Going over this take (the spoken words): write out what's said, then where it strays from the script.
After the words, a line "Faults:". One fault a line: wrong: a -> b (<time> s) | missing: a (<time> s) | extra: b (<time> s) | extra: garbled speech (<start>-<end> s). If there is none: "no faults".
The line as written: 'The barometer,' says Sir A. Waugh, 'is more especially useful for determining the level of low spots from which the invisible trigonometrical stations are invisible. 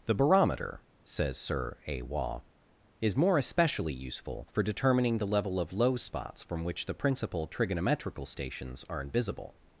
'The barometer,' says Sir A. Waugh, 'is more especially useful for determining the level of low spots from which the principal trigonometrical stations are invisible.
Faults:
wrong: invisible -> principal (7.0 s)